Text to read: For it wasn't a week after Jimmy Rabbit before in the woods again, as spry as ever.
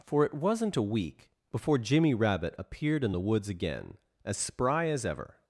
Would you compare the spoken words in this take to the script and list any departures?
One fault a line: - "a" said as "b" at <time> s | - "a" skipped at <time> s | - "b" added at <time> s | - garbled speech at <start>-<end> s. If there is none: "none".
- "after" said as "before" at 1.5 s
- "before" said as "appeared" at 2.6 s